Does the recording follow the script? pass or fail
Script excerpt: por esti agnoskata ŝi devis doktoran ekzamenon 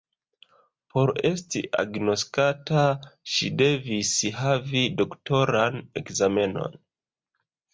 fail